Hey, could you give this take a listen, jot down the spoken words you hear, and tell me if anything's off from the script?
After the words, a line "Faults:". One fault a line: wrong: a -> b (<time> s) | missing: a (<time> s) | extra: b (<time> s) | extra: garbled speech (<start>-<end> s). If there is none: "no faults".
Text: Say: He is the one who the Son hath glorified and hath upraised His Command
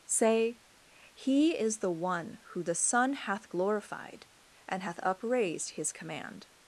Say: He is the one who the Son hath glorified and hath upraised His Command
Faults:
no faults